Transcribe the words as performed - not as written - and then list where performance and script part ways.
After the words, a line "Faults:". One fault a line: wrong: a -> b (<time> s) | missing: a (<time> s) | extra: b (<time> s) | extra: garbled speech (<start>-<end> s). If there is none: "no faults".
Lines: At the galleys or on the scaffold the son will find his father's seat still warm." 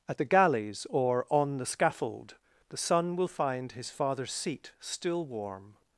At the galleys or on the scaffold the son will find his father's seat still warm."
Faults:
no faults